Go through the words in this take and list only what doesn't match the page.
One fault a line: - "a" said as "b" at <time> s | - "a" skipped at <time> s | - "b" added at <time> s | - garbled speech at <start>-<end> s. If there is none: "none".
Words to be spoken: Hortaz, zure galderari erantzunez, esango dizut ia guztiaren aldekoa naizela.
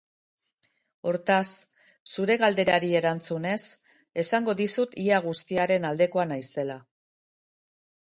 none